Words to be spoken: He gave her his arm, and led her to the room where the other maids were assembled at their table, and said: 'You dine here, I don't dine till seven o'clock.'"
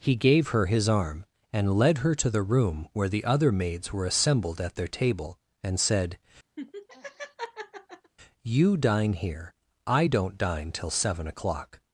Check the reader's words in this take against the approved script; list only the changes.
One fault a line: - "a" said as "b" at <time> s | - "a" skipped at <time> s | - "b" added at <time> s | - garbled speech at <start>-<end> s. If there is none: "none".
none